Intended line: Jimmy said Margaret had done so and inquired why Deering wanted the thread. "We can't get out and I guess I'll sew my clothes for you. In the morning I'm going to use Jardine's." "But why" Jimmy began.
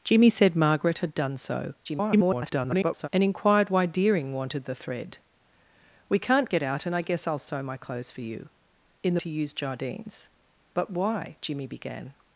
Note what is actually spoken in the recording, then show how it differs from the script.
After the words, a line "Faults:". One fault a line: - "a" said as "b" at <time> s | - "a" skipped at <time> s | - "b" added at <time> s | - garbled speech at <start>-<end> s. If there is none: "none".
Jimmy said Margaret had done so [garbled] and inquired why Deering wanted the thread. "We can't get out and I guess I'll sew my clothes for you. In the to use Jardine's." "But why" Jimmy began.
Faults:
- garbled speech at 1.8-3.1 s
- "morning I'm going" skipped at 9.2 s